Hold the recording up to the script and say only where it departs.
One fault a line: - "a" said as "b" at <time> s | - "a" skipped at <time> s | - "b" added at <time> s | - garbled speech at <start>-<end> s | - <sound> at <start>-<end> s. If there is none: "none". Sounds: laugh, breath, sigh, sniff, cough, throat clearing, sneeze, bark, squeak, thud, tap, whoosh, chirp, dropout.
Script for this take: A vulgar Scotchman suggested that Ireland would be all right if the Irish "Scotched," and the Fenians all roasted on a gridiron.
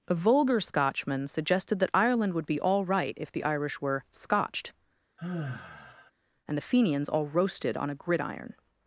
- "were" added at 3.8 s
- sigh at 5.2-6.1 s